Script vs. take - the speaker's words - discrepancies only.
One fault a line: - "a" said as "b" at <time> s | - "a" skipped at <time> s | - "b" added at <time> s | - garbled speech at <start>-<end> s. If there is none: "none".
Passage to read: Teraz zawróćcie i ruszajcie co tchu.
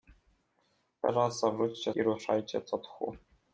none